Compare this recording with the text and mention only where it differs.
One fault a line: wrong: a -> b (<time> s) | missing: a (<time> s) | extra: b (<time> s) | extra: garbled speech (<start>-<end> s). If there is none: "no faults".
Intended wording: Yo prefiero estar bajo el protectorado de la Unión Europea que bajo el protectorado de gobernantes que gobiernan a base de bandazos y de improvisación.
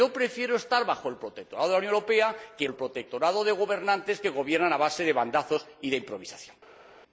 missing: bajo (2.7 s)